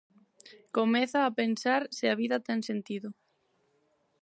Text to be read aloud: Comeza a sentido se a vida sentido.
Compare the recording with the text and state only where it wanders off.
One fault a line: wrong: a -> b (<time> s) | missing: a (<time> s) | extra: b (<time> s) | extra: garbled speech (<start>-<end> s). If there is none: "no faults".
wrong: sentido -> pensar (1.4 s)
extra: ten (2.5 s)